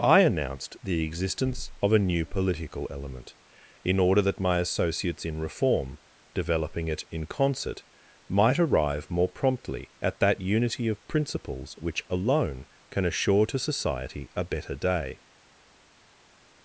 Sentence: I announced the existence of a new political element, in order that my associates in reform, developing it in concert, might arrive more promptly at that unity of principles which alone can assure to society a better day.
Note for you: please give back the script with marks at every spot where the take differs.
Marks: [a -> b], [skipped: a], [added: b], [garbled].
I announced the existence of a new political element, in order that my associates in reform, developing it in concert, might arrive more promptly at that unity of principles which alone can assure to society a better day.